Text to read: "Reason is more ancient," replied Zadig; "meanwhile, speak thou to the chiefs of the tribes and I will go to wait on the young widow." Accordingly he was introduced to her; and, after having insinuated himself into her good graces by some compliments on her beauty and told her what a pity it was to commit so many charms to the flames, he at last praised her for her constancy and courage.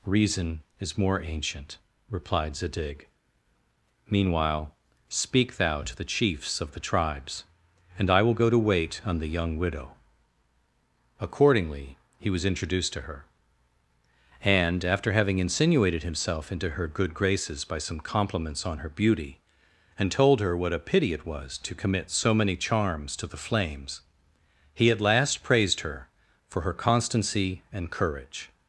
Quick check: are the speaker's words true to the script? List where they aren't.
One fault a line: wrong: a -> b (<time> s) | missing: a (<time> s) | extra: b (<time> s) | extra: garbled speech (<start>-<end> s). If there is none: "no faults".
no faults